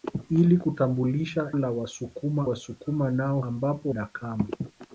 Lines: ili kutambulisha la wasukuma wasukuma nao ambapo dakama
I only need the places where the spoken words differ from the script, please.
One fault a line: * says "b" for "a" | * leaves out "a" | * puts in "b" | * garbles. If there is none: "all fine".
all fine